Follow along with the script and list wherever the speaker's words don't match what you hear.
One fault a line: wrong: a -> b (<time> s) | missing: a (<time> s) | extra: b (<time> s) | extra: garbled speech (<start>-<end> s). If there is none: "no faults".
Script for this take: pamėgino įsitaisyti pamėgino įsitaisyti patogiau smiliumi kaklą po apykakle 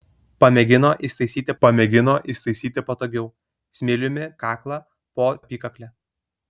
no faults